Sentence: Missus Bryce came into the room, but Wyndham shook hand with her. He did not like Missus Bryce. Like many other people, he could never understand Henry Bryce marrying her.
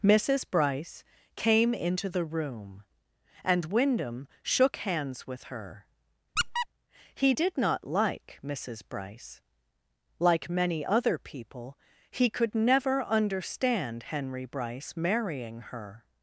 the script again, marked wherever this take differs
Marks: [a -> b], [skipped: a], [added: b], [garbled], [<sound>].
Missus Bryce came into the room, [but -> and] Wyndham shook [hand -> hands] with her. [squeak] He did not like Missus Bryce. Like many other people, he could never understand Henry Bryce marrying her.